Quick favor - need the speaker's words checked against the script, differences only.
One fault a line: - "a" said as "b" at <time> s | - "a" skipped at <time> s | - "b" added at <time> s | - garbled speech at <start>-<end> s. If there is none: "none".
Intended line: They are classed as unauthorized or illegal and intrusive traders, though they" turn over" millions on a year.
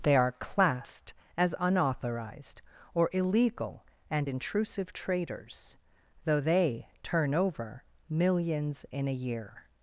- "on" said as "in" at 8.9 s